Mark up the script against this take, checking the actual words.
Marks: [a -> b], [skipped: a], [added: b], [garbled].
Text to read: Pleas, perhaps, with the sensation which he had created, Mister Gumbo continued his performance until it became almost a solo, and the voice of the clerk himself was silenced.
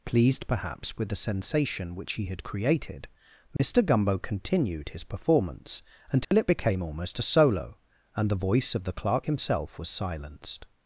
[Pleas, -> Pleased] perhaps, with the sensation which he had created, Mister Gumbo continued his performance until it became almost a solo, and the voice of the clerk himself was silenced.